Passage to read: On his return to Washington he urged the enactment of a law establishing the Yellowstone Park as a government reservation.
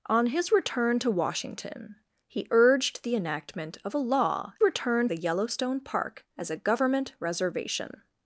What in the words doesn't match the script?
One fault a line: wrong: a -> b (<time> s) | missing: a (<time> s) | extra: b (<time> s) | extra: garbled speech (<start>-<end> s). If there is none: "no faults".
wrong: establishing -> return (4.6 s)